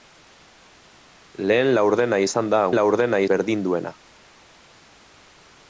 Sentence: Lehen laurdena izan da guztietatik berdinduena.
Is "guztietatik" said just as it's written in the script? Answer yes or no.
no